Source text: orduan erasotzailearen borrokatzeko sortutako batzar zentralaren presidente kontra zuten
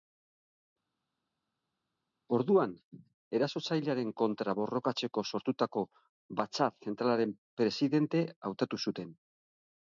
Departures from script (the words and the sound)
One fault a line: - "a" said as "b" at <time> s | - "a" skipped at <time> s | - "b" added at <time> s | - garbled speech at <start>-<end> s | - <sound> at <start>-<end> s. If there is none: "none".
- "kontra" added at 4.2 s
- "kontra" said as "hautatu" at 8.5 s